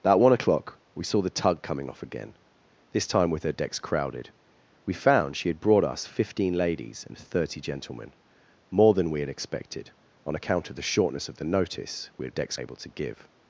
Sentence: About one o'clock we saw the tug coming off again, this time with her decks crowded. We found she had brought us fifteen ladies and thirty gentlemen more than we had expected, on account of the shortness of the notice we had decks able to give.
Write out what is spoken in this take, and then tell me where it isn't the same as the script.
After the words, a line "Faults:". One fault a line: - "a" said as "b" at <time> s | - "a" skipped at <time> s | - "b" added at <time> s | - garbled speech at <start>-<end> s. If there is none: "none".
About one o'clock we saw the tug coming off again, this time with her decks crowded. We found she had brought us fifteen ladies and thirty gentlemen more than we had expected, on account of the shortness of the notice we had decks able to give.
Faults:
none